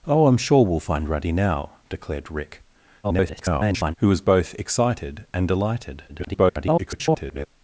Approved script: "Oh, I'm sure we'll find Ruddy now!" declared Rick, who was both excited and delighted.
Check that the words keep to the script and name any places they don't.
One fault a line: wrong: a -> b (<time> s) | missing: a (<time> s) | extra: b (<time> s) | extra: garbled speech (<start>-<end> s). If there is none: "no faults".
extra: garbled speech (3.0-4.0 s)
extra: garbled speech (6.1-7.5 s)